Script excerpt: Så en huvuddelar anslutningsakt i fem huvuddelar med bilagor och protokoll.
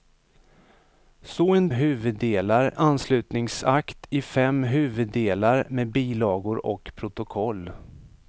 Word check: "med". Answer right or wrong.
right